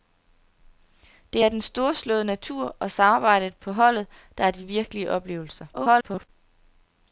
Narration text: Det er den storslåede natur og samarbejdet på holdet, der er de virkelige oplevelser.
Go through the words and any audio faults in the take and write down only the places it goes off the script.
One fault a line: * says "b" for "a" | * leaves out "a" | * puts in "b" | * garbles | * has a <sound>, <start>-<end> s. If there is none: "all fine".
* garbles